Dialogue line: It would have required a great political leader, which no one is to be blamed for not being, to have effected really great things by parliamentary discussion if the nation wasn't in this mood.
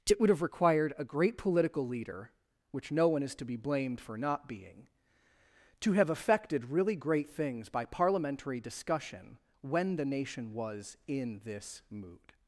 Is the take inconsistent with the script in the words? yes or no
yes